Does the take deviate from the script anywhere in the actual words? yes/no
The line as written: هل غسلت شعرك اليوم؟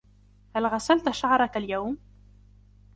no